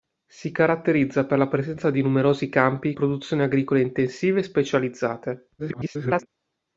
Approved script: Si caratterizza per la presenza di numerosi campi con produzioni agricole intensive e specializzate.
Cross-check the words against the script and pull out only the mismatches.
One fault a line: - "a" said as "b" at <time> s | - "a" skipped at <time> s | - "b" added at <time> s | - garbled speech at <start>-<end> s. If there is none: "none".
- "con" skipped at 3.0 s
- garbled speech at 5.6-6.3 s